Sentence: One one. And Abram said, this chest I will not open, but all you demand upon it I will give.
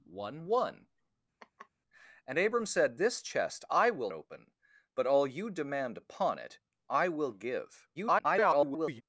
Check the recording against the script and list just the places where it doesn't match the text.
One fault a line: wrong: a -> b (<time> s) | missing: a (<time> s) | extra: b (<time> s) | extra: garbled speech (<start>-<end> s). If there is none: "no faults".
missing: not (4.1 s)
extra: garbled speech (7.9-9.0 s)